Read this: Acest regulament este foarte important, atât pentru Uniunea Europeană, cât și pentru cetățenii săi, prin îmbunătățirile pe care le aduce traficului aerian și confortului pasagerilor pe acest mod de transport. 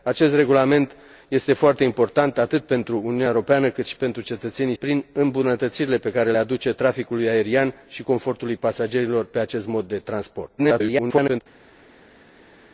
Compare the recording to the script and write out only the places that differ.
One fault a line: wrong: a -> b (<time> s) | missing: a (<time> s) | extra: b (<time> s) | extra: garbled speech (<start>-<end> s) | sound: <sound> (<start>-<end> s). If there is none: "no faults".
missing: săi (4.7 s)
missing: le (6.3 s)
extra: garbled speech (10.6-11.4 s)